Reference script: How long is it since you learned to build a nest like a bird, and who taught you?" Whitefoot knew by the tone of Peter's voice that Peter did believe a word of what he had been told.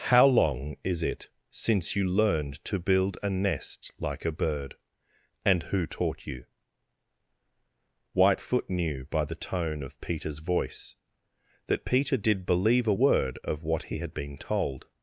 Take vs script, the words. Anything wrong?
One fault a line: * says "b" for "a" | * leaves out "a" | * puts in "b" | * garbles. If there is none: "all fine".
all fine